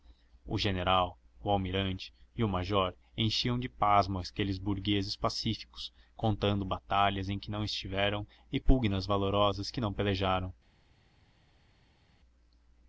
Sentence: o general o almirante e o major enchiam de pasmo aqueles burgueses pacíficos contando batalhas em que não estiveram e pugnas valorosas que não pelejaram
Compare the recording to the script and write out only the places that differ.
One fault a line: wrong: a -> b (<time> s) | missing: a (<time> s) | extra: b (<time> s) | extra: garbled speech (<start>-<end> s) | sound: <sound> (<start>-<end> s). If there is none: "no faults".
no faults